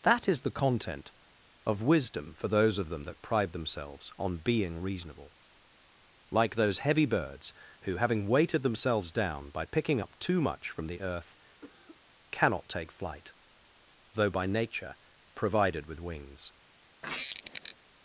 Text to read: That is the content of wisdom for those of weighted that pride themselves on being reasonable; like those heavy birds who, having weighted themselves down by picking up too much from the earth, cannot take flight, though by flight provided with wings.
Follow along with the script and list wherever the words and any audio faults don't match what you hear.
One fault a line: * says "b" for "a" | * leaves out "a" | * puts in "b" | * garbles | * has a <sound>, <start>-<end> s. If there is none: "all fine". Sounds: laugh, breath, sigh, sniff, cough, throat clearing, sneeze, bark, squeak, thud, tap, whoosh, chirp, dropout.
* says "them" for "weighted"
* has a cough, 11.6-12.0 s
* says "nature" for "flight"
* has a squeak, 17.0-17.8 s